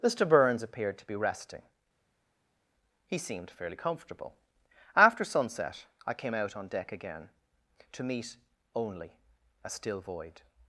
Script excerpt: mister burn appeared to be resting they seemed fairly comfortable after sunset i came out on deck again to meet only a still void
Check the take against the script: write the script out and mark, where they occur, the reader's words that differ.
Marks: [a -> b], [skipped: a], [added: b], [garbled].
mister [burn -> burns] appeared to be resting [they -> he] seemed fairly comfortable after sunset i came out on deck again to meet only a still void